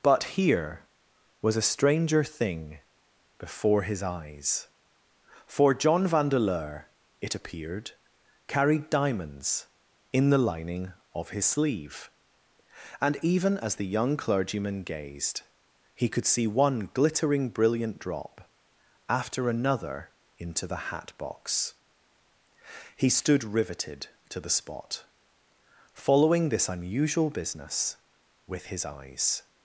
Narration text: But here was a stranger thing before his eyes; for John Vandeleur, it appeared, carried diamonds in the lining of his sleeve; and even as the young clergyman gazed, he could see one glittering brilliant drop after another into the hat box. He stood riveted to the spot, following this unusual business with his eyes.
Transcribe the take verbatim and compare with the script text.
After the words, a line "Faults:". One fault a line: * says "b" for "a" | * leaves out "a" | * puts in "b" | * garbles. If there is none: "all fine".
But here was a stranger thing before his eyes; for John Vandeleur, it appeared, carried diamonds in the lining of his sleeve; and even as the young clergyman gazed, he could see one glittering brilliant drop after another into the hat box. He stood riveted to the spot, following this unusual business with his eyes.
Faults:
all fine